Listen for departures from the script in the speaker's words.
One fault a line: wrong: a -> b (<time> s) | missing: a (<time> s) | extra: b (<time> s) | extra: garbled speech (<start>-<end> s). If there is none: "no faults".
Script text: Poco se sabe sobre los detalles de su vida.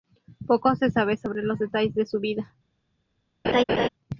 no faults